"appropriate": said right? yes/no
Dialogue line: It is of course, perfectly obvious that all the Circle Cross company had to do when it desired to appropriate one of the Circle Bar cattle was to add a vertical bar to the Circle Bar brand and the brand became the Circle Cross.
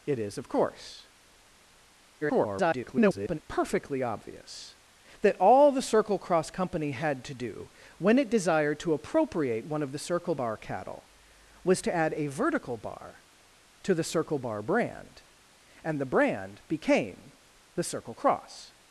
yes